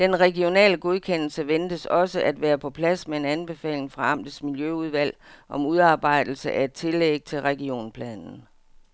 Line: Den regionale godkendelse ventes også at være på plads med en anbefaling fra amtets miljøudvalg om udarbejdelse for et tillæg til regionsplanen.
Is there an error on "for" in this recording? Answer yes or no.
yes